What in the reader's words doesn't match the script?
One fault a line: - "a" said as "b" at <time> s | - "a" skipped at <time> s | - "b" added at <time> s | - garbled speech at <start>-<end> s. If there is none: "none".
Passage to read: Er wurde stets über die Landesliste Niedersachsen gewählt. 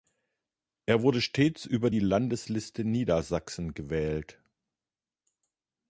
none